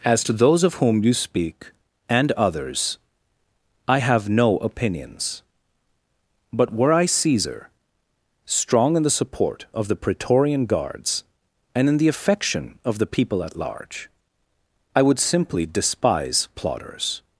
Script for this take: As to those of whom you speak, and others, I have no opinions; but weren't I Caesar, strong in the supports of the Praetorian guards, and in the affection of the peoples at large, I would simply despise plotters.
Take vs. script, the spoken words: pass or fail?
fail